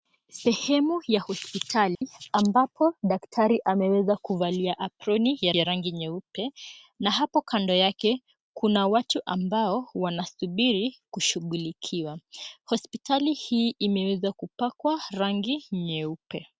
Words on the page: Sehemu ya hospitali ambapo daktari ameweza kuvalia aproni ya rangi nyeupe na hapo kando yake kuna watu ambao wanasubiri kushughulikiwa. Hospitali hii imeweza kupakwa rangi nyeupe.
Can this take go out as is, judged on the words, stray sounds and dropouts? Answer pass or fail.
fail